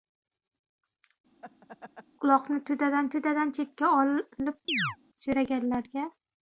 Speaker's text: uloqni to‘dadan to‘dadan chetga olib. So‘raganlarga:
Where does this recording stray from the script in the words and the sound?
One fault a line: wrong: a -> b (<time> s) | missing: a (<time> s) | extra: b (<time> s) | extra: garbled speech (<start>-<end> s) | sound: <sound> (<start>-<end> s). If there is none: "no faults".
sound: laugh (1.4-2.1 s)
sound: chirp (4.7-5.0 s)